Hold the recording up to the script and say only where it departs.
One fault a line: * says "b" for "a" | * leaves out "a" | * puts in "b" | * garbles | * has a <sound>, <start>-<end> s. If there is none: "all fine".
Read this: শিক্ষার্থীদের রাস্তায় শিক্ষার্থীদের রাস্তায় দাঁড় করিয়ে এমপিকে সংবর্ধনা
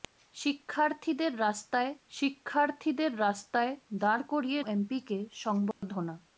* has a dropout, 5.7-5.8 s